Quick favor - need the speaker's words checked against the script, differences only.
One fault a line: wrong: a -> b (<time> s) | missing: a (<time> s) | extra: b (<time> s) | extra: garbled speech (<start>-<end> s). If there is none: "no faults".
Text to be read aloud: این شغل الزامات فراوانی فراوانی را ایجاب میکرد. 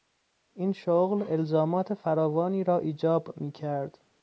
missing: فراوانی (2.6 s)